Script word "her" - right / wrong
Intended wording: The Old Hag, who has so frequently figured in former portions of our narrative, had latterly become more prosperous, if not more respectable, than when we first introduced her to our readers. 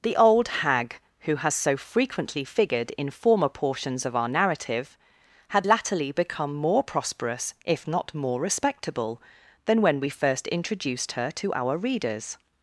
right